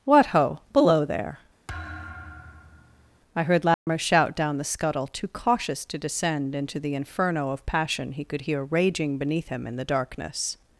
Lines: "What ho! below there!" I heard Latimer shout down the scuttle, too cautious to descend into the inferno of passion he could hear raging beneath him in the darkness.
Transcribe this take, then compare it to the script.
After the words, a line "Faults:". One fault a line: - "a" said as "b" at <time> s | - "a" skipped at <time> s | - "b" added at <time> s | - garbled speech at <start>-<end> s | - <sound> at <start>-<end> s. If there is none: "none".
"What ho! below there!" I heard Latimer shout down the scuttle, too cautious to descend into the inferno of passion he could hear raging beneath him in the darkness.
Faults:
- thud at 1.7-3.2 s
- dropout at 3.7-3.9 s